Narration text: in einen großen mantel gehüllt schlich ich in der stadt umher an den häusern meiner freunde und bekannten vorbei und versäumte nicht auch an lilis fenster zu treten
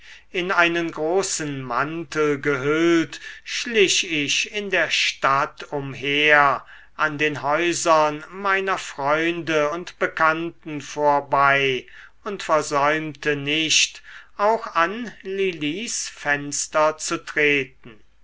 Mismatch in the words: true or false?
false